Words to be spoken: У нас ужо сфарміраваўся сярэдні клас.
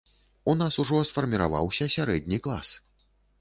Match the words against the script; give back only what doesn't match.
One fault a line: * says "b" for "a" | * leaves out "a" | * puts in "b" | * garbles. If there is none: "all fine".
all fine